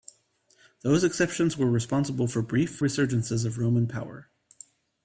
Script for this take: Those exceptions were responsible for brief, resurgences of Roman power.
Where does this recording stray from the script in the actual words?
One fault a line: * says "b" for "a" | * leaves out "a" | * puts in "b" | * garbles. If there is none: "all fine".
all fine